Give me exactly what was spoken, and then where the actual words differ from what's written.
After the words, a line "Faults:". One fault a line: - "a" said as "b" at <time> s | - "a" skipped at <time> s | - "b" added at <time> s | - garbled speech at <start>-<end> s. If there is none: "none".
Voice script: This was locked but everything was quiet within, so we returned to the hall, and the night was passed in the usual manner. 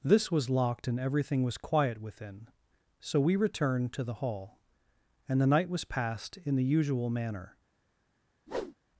This was locked and everything was quiet within, so we returned to the hall, and the night was passed in the usual manner.
Faults:
- "but" said as "and" at 0.9 s